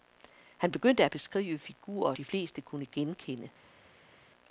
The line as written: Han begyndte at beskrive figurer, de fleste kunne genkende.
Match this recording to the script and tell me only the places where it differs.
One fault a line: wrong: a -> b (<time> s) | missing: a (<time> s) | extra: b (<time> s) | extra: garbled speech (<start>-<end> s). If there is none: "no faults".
no faults